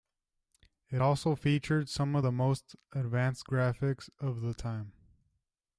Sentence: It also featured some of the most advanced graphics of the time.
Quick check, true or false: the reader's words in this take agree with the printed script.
true